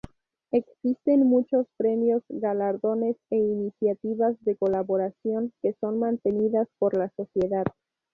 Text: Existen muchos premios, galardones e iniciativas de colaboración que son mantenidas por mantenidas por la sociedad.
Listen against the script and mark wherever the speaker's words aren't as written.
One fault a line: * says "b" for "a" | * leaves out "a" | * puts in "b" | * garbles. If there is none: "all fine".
* leaves out "mantenidas por"